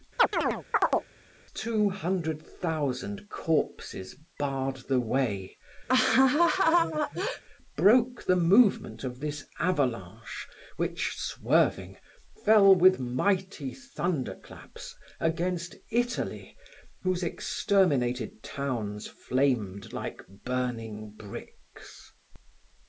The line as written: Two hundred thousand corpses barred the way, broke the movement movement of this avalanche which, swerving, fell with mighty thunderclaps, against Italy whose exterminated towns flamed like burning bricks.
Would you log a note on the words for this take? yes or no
yes